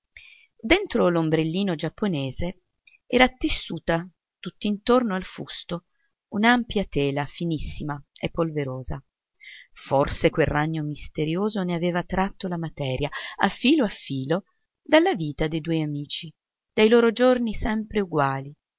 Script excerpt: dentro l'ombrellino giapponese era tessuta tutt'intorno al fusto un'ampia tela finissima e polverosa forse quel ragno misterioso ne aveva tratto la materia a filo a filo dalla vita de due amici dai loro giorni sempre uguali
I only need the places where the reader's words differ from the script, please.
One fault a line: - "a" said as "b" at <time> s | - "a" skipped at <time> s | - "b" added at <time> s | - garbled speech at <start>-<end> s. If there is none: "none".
none